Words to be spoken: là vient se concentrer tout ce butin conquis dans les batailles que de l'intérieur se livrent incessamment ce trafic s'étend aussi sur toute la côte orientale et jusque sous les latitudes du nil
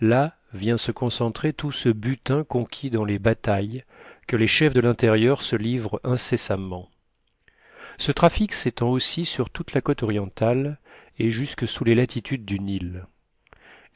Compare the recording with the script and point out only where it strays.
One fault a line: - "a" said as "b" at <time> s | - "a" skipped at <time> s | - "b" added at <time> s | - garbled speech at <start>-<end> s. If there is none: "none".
- "les chefs" added at 4.4 s